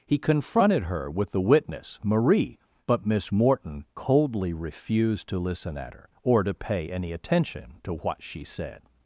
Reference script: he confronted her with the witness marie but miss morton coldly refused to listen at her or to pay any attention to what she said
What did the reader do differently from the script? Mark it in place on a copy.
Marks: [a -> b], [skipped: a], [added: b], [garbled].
he confronted her with the witness marie but miss morton coldly refused to listen at her or to pay any attention to what she said